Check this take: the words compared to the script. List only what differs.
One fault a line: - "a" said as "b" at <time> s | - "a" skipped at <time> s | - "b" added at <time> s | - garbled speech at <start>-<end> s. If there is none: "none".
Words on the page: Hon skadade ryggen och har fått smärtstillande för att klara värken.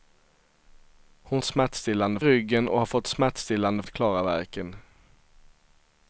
- "skadade" said as "smärtstillande" at 1.4 s
- "för" skipped at 3.8 s